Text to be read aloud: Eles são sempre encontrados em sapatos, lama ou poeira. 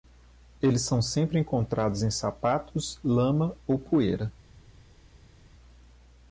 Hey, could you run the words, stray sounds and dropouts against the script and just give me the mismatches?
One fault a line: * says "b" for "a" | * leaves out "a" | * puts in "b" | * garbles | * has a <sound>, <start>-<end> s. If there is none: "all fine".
all fine